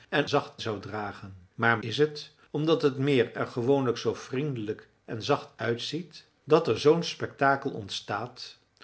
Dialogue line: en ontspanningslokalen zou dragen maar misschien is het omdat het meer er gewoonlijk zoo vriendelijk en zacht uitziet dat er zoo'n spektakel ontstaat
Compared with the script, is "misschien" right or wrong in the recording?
wrong